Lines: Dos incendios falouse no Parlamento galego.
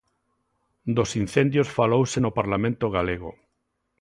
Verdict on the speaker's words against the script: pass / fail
pass